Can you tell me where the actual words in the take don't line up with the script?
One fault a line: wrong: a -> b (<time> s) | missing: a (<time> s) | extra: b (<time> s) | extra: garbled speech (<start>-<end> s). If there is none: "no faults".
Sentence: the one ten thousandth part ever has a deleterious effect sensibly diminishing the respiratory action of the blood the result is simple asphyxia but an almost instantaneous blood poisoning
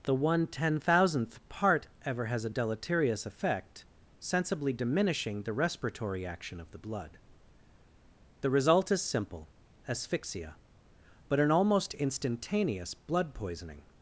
no faults